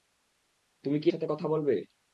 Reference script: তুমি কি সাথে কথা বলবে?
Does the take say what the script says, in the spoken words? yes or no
yes